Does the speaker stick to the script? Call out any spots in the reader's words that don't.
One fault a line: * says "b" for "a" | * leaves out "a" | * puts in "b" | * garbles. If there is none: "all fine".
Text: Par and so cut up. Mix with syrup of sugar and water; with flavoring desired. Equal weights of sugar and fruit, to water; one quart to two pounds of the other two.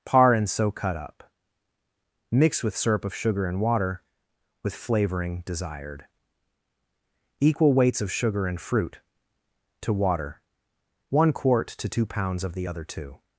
all fine